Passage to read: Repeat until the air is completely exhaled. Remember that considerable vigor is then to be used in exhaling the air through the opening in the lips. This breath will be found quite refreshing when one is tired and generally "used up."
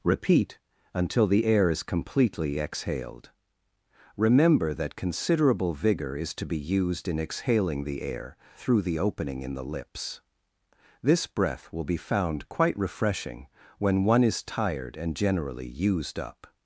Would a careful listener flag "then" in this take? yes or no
yes